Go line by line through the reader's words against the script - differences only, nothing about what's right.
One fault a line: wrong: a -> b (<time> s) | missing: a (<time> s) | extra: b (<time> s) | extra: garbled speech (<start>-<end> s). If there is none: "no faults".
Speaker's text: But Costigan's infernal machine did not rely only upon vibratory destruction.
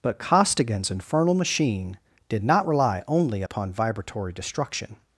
no faults